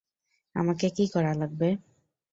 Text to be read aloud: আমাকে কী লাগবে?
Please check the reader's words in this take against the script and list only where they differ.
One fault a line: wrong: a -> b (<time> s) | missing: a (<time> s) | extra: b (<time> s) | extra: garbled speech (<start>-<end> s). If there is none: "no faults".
extra: করা (1.1 s)